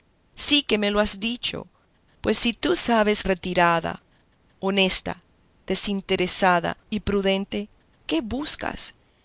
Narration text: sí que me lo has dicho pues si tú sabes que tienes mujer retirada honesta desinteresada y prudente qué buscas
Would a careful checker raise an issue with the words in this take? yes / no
yes